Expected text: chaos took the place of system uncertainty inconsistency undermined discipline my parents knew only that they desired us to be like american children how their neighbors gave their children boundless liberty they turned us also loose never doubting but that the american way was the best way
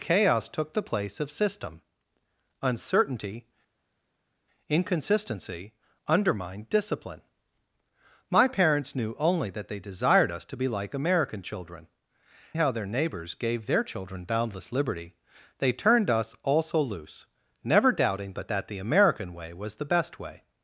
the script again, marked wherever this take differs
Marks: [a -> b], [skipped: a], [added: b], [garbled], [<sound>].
chaos took the place of system uncertainty inconsistency undermined discipline my parents knew only that they desired us to be like american children how their neighbors gave their children boundless liberty they turned us also loose never doubting but that the american way was the best way